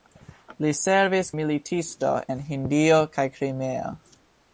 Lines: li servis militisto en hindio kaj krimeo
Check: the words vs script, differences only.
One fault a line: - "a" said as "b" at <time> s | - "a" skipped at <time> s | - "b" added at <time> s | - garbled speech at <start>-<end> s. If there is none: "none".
none